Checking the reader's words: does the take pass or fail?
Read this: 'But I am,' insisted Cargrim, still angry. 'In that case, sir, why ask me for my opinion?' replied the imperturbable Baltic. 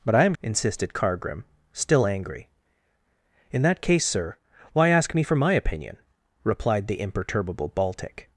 pass